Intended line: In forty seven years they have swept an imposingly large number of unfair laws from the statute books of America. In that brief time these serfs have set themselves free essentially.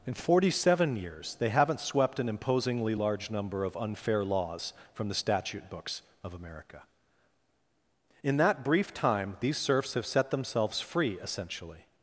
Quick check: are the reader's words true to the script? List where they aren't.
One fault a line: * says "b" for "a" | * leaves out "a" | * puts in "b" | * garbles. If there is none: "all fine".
* says "haven't" for "have"